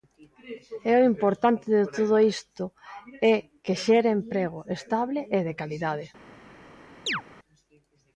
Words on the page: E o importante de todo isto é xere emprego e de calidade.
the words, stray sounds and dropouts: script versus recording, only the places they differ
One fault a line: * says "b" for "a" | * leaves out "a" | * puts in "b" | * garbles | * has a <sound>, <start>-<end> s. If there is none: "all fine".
* puts in "que"
* puts in "estable"
* has a chirp, 7.1-7.2 s